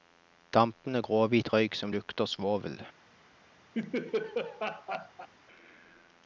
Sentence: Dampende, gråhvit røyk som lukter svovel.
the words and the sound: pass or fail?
fail